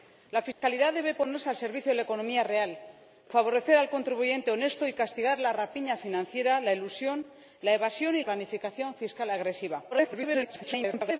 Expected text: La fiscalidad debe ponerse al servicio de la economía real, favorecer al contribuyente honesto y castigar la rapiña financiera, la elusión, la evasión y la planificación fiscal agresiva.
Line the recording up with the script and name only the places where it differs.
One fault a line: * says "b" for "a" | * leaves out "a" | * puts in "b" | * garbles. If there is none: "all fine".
* leaves out "la"
* garbles